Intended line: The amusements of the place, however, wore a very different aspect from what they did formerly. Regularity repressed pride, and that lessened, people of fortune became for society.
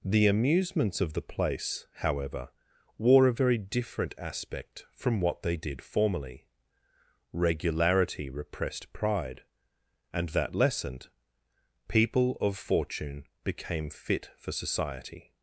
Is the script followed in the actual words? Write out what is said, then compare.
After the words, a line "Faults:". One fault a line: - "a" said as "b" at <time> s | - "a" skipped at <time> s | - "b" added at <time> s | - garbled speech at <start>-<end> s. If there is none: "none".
The amusements of the place, however, wore a very different aspect from what they did formerly. Regularity repressed pride, and that lessened, people of fortune became fit for society.
Faults:
- "fit" added at 13.9 s